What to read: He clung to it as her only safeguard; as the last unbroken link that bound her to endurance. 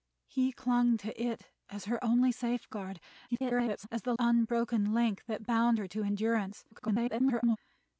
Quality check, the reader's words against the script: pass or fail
fail